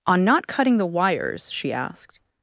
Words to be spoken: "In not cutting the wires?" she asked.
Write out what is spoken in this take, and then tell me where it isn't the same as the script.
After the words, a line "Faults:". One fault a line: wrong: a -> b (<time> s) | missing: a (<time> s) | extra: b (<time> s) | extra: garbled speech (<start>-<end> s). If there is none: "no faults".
"On not cutting the wires?" she asked.
Faults:
wrong: In -> On (0.1 s)